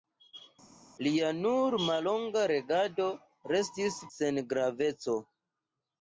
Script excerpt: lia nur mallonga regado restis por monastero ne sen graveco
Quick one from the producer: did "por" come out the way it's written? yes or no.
no